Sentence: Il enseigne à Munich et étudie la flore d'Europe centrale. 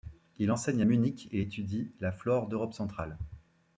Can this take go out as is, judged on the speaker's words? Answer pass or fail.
pass